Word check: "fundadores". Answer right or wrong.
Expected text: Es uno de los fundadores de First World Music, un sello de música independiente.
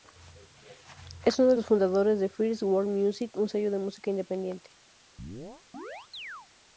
right